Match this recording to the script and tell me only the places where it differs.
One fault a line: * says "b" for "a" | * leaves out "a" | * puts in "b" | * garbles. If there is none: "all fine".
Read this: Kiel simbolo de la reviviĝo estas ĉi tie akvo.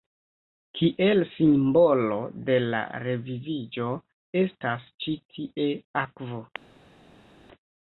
all fine